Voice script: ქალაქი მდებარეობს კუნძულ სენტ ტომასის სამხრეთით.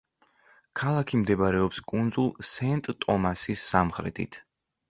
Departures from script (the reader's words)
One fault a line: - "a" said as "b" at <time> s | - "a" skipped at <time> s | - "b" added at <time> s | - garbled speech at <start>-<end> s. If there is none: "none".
none